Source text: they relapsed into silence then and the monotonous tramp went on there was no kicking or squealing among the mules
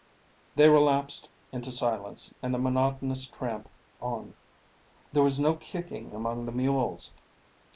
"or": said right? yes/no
no